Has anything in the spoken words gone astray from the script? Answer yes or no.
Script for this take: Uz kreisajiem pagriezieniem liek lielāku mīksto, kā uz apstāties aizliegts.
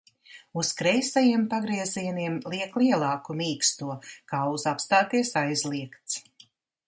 no